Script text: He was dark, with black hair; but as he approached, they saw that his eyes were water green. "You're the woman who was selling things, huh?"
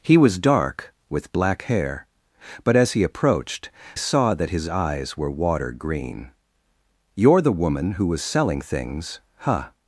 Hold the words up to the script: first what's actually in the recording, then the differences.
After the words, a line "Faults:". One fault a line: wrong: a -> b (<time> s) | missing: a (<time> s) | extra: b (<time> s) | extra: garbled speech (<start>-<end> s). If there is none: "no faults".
He was dark, with black hair; but as he approached, saw that his eyes were water green. "You're the woman who was selling things, huh?"
Faults:
missing: they (3.7 s)